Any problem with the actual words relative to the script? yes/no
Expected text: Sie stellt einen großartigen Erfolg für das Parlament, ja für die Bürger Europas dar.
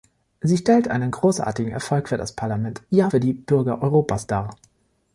no